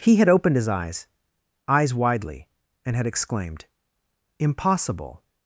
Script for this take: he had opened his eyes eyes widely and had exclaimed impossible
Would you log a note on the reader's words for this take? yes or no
no